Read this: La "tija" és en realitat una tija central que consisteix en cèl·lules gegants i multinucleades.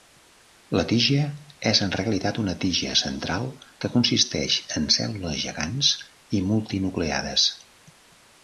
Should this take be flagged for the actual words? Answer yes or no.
no